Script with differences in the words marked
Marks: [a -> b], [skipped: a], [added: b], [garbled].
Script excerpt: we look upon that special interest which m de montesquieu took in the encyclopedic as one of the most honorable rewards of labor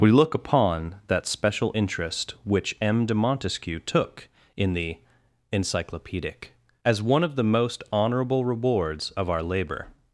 we look upon that special interest which m de montesquieu took in the encyclopedic as one of the most honorable rewards of [added: our] labor